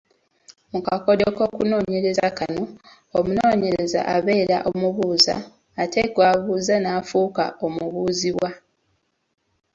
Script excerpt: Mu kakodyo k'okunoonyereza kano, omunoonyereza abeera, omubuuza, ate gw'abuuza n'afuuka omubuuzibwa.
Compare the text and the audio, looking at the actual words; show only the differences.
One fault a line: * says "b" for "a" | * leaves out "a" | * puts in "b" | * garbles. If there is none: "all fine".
all fine